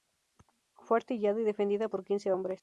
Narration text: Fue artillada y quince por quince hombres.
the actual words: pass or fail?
fail